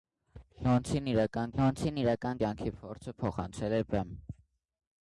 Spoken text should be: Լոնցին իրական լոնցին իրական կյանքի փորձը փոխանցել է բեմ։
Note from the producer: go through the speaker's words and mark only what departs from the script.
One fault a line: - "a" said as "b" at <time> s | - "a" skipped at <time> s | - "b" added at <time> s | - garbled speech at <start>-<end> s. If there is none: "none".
none